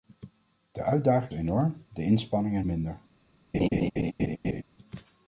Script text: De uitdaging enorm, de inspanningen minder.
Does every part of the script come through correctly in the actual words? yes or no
yes